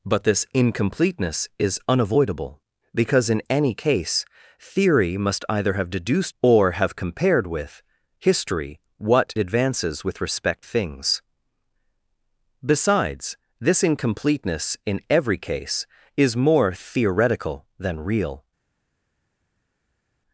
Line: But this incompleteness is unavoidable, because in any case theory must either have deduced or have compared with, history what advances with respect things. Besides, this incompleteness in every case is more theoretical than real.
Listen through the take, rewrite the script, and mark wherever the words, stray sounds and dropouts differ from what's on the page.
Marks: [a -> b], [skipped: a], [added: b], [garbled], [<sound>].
But this incompleteness is unavoidable, because in any case theory must either have deduced or have compared with, history what advances with respect things. Besides, this incompleteness in every case is more theoretical than real.